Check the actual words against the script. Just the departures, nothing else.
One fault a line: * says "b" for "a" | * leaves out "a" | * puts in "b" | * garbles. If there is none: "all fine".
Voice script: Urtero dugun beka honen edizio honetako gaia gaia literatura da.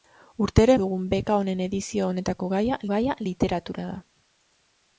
all fine